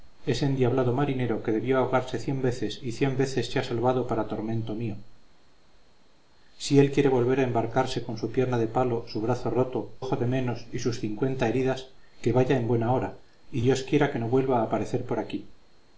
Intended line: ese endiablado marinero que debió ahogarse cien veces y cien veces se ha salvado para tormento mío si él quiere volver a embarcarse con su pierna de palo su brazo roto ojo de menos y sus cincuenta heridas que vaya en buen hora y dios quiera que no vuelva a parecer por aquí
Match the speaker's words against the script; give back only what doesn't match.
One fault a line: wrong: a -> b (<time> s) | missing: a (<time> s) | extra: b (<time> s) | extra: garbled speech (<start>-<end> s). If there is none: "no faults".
no faults